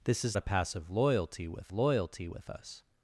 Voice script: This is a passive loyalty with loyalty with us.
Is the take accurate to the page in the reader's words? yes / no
yes